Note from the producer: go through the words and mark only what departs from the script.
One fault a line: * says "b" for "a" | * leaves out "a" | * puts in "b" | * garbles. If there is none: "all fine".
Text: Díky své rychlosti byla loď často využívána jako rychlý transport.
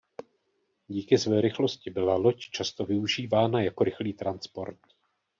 all fine